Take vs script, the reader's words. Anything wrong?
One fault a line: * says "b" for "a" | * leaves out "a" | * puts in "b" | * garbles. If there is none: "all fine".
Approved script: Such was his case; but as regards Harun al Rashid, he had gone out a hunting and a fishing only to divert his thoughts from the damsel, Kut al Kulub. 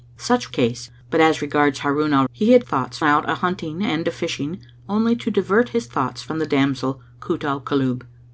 * leaves out "was his"
* leaves out "Rashid"
* says "thoughts" for "gone"